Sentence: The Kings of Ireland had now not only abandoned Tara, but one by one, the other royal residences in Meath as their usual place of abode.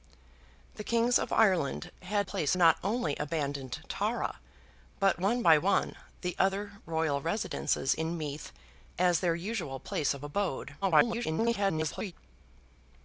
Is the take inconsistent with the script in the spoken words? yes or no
yes